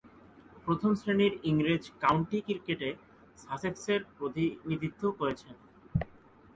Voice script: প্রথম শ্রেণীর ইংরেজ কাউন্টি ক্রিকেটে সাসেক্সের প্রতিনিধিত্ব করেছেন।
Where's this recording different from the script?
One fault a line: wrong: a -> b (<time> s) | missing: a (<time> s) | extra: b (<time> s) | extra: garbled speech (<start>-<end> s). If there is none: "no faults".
no faults